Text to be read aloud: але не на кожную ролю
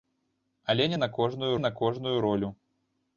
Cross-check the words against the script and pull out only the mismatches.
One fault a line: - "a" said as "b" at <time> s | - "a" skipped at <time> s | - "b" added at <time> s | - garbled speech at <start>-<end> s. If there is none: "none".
- "на кожную" added at 1.6 s